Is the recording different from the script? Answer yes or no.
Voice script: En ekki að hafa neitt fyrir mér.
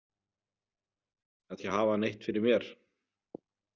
no